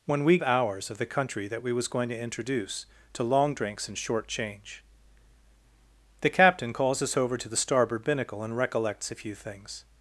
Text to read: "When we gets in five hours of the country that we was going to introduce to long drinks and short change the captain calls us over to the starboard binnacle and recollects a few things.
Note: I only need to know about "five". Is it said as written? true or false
false